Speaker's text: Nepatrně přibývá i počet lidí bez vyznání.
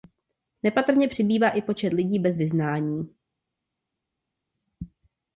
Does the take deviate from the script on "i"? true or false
false